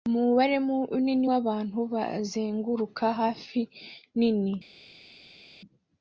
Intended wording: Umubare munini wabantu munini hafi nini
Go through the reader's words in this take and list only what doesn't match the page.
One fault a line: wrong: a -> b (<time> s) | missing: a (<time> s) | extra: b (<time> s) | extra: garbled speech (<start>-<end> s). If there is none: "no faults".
wrong: munini -> bazenguruka (1.9 s)